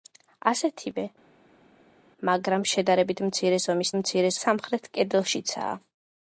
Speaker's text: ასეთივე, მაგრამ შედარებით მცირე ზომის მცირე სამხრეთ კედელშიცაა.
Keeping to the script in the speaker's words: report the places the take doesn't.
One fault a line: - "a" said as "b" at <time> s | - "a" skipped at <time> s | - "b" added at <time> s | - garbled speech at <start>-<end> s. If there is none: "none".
none